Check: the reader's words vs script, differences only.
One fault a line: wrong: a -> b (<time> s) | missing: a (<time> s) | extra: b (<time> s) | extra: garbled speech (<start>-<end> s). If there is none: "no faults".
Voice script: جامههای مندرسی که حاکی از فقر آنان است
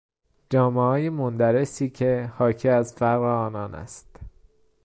no faults